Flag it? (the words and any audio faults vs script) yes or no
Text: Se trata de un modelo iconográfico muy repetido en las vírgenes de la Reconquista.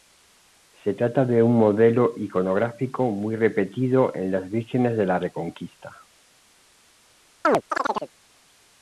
yes